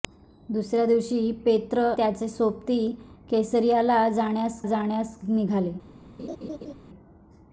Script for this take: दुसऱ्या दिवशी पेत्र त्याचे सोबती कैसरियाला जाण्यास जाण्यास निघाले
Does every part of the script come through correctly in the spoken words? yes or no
yes